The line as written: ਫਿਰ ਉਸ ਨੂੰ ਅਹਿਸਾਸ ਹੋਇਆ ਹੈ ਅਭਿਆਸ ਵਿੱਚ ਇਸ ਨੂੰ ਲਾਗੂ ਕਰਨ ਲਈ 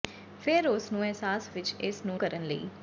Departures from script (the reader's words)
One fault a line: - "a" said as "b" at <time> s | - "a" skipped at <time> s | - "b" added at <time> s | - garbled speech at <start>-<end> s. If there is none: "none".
- "ਹੋਇਆ ਹੈ ਅਭਿਆਸ" skipped at 1.5 s
- "ਲਾਗੂ" skipped at 2.2 s